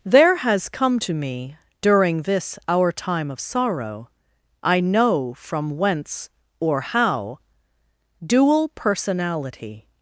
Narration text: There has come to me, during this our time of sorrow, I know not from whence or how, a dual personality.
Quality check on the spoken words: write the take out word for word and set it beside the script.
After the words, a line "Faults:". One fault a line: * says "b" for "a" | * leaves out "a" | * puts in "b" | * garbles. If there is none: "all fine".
There has come to me, during this our time of sorrow, I know from whence or how, dual personality.
Faults:
* leaves out "not"
* leaves out "a"